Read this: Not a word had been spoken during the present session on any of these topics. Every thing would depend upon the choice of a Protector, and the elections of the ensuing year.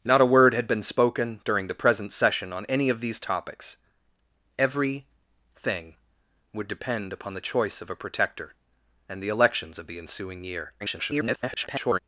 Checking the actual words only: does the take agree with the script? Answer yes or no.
no